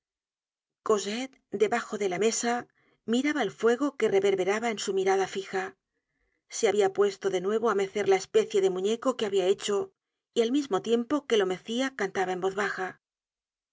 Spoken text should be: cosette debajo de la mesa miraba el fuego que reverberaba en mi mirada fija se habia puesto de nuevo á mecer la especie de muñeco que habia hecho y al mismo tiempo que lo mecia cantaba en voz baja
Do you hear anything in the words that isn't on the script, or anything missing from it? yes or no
yes